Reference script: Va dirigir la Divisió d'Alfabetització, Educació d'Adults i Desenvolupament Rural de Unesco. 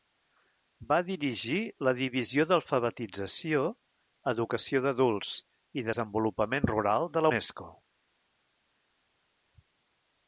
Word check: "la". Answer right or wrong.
right